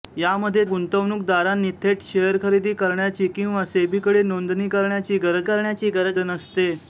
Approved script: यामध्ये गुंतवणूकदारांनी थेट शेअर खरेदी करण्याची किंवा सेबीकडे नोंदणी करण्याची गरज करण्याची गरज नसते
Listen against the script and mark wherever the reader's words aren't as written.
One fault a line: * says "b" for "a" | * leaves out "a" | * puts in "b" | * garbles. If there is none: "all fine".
all fine